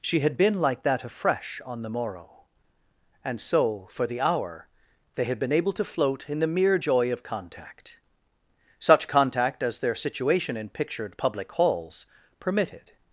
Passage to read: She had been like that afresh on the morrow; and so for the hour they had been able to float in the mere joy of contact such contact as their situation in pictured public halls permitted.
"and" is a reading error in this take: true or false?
false